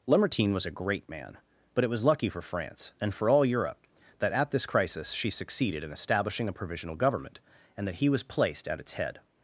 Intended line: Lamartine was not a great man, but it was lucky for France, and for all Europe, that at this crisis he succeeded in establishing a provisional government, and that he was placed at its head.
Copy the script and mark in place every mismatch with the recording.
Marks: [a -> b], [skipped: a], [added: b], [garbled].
Lamartine was [skipped: not] a great man, but it was lucky for France, and for all Europe, that at this crisis [he -> she] succeeded in establishing a provisional government, and that he was placed at its head.